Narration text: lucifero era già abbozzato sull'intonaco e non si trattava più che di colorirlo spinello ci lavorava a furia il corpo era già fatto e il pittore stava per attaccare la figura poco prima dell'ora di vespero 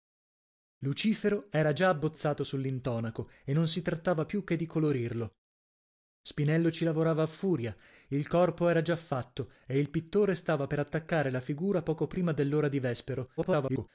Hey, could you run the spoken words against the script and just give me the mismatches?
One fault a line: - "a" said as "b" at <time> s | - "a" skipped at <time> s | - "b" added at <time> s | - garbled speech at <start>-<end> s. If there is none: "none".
- garbled speech at 13.4-13.9 s